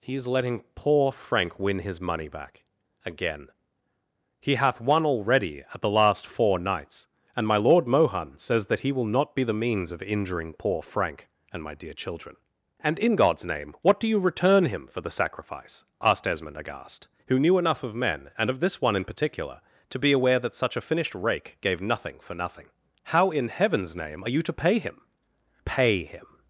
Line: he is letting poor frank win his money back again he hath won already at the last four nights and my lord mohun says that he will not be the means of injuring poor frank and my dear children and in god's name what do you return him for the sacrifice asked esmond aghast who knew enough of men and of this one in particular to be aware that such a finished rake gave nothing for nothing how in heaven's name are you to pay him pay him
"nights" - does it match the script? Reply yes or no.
yes